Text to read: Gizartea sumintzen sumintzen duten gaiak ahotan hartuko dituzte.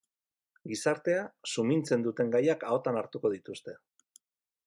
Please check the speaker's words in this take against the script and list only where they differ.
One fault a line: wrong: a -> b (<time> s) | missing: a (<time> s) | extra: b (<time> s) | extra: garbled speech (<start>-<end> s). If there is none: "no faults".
missing: sumintzen (2.1 s)